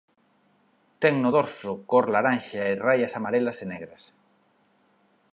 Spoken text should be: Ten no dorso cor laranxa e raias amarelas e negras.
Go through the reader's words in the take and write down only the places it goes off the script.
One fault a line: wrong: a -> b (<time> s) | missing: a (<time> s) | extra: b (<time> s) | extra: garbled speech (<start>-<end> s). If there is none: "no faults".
no faults